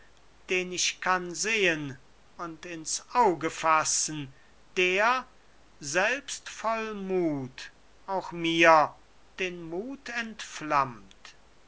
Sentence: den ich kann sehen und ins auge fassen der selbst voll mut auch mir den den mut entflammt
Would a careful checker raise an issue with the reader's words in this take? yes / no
yes